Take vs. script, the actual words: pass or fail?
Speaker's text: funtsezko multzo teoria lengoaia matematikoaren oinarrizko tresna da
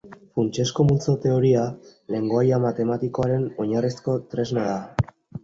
pass